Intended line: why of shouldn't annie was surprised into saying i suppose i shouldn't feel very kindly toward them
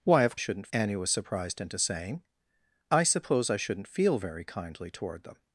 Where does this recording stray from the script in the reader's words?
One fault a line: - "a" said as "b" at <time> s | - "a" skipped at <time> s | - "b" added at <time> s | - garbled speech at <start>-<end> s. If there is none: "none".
none